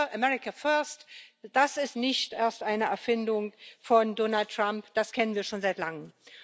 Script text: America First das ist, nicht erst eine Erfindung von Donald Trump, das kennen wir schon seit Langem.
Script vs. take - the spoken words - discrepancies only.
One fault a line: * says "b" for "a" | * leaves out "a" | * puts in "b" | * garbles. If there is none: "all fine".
all fine